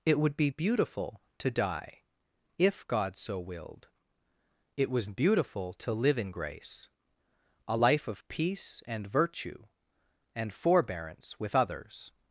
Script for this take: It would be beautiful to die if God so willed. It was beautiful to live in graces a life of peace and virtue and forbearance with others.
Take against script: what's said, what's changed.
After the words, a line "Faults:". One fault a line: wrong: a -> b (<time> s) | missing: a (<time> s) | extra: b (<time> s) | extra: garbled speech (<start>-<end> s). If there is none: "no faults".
It would be beautiful to die if God so willed. It was beautiful to live in grace a life of peace and virtue and forbearance with others.
Faults:
wrong: graces -> grace (6.3 s)